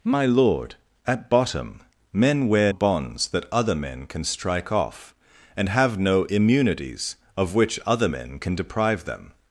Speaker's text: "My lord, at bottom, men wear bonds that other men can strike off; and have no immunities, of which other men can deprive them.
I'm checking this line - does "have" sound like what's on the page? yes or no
yes